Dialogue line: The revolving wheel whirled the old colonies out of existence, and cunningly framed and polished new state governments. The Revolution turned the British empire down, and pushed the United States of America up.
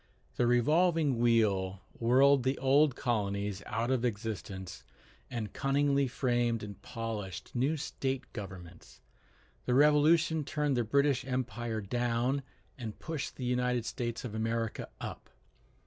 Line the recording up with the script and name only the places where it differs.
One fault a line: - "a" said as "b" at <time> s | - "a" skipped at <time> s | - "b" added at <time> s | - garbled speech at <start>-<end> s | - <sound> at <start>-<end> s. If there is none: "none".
none